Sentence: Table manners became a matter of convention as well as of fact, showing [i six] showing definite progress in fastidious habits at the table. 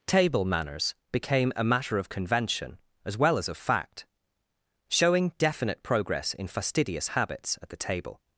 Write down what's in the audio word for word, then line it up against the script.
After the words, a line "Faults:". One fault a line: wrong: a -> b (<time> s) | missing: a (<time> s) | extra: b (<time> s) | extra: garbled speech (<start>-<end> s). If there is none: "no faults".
Table manners became a matter of convention as well as of fact, showing definite progress in fastidious habits at the table.
Faults:
missing: i six showing (5.3 s)